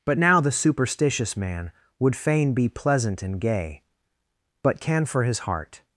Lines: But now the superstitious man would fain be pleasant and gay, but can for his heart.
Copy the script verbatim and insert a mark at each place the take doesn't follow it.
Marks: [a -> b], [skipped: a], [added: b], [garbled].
But now the superstitious man would fain be pleasant and gay, but can for his heart.